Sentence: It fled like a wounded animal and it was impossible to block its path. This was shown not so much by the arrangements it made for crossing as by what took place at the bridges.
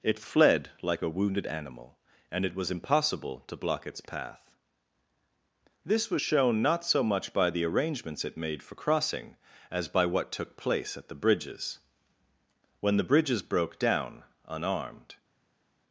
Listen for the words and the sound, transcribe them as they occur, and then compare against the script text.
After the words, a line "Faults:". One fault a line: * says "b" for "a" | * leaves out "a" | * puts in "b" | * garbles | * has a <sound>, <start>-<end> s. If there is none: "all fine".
It fled like a wounded animal and it was impossible to block its path. This was shown not so much by the arrangements it made for crossing as by what took place at the bridges. When the bridges broke down, unarmed
Faults:
* puts in "When the bridges broke down unarmed"